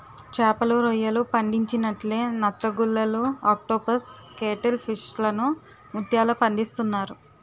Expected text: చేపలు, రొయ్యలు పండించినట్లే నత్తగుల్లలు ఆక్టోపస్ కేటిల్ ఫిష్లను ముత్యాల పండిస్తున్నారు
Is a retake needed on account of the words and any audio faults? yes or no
no